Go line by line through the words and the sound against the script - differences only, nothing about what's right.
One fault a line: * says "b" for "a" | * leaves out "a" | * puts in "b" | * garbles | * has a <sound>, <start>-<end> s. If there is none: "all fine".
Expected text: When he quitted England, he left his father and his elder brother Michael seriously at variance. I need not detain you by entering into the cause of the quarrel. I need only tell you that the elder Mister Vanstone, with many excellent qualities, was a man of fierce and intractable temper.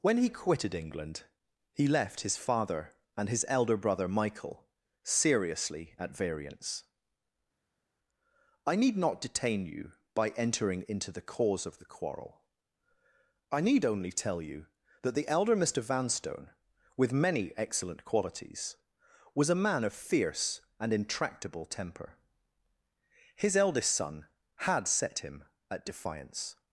* puts in "His eldest son had set him at defiance"